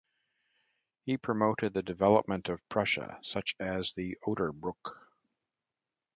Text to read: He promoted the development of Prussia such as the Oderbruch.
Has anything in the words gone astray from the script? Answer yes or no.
no